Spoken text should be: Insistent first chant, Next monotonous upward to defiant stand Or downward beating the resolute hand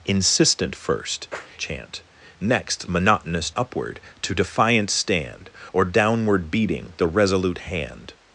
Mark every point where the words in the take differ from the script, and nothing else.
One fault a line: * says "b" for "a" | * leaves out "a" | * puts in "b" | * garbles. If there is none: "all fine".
all fine